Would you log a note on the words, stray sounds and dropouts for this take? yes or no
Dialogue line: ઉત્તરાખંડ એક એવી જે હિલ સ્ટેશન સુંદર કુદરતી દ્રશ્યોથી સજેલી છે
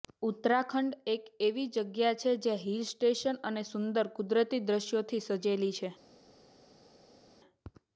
yes